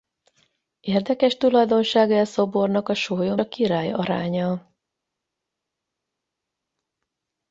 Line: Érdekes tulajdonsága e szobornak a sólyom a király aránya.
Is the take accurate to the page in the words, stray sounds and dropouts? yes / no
yes